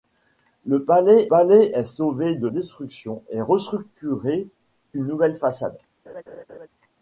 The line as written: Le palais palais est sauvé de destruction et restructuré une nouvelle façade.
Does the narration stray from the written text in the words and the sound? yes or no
yes